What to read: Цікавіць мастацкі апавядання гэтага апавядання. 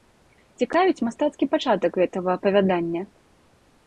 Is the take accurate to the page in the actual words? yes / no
no